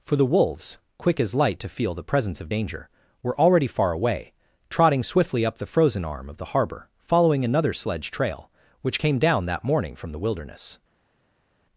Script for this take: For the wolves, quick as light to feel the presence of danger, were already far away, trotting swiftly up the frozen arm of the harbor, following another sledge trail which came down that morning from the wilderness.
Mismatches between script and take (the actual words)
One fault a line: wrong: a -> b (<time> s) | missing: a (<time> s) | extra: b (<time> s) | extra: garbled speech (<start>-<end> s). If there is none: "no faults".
no faults